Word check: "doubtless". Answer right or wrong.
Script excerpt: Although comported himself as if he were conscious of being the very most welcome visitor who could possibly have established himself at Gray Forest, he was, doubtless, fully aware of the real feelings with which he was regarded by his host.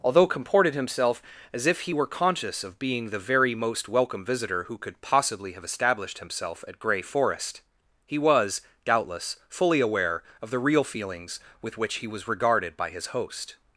right